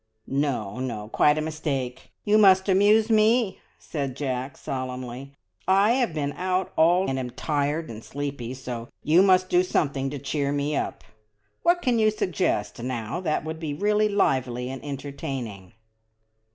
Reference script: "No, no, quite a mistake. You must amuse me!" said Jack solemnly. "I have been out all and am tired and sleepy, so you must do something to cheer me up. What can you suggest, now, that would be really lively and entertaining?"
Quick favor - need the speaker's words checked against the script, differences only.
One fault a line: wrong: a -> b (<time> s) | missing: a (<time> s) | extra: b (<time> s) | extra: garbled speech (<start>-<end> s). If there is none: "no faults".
no faults